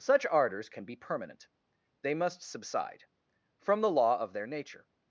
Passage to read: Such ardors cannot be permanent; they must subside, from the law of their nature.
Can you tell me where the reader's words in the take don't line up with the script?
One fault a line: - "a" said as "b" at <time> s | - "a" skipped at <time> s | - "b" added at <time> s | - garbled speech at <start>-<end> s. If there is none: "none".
- "cannot" said as "can" at 0.7 s